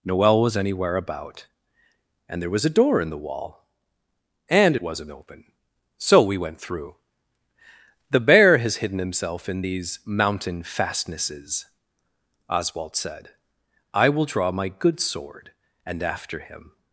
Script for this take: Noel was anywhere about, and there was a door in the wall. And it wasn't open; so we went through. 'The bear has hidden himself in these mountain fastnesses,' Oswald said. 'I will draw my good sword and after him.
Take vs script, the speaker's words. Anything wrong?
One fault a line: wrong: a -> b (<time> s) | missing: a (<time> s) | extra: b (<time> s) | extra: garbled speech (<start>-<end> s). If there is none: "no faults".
no faults